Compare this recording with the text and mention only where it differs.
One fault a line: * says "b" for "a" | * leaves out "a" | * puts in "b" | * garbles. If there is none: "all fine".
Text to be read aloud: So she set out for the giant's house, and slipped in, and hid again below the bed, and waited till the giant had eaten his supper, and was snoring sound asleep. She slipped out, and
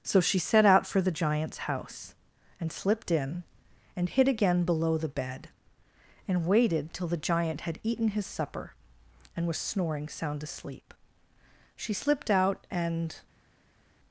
all fine